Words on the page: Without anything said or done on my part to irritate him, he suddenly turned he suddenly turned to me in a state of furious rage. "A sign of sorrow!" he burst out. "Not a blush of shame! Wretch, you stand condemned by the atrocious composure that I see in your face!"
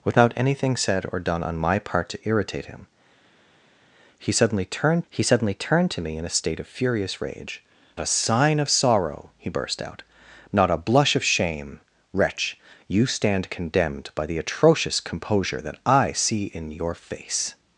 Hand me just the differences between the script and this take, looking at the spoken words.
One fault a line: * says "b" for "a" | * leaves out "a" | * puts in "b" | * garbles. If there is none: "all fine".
all fine